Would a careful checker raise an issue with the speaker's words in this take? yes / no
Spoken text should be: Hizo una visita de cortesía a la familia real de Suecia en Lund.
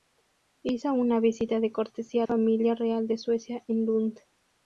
yes